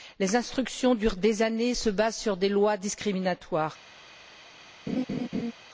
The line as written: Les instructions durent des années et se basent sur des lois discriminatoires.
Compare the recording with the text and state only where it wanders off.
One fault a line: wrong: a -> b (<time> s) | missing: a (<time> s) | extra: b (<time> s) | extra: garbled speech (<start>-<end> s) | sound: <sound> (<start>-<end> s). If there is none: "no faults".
sound: laugh (4.9-5.5 s)